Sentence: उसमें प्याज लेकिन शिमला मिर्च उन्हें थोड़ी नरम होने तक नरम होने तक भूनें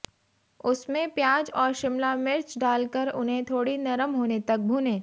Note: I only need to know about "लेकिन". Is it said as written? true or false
false